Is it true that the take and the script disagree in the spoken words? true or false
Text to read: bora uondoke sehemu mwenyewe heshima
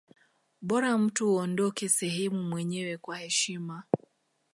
true